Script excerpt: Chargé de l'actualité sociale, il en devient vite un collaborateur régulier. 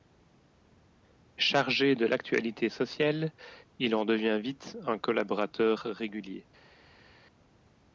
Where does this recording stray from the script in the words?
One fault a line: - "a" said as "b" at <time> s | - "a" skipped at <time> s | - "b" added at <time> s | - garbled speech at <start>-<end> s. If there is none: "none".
none